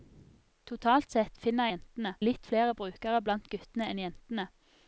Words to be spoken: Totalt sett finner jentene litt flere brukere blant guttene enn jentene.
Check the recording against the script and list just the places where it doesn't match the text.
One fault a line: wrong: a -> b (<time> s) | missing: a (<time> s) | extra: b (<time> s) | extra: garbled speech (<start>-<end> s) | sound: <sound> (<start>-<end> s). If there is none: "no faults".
no faults